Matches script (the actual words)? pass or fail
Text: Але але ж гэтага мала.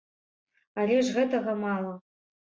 fail